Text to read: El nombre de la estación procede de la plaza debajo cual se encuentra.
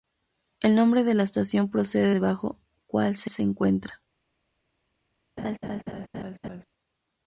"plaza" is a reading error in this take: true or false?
true